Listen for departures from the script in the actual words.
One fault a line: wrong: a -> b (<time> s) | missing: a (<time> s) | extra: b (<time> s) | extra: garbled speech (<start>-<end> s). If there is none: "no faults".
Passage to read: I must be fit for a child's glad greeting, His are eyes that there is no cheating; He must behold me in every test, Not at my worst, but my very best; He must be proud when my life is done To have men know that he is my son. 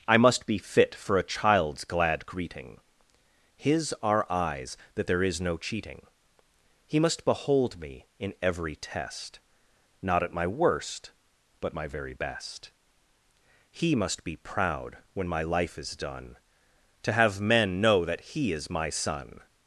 no faults